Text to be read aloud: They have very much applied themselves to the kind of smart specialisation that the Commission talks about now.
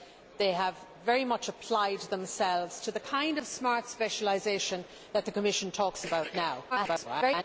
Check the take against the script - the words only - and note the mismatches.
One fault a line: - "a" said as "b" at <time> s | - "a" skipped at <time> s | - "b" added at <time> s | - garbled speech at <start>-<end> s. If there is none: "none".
- garbled speech at 6.7-7.4 s